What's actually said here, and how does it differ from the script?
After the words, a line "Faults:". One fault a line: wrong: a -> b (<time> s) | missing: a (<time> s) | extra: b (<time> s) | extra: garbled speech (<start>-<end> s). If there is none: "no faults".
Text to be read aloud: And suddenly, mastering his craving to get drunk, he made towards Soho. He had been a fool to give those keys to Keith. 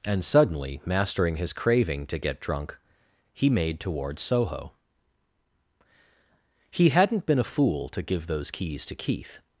And suddenly, mastering his craving to get drunk, he made towards Soho. He hadn't been a fool to give those keys to Keith.
Faults:
wrong: had -> hadn't (6.9 s)